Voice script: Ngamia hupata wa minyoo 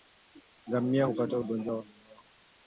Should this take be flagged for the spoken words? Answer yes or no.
yes